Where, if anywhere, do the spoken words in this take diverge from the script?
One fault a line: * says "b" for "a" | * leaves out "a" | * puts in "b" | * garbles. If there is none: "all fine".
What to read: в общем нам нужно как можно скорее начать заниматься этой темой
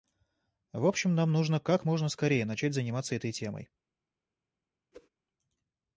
all fine